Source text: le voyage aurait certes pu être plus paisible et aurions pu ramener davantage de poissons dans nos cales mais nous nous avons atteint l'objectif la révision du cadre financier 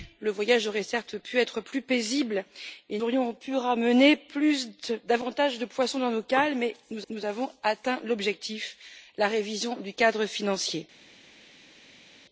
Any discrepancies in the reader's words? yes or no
no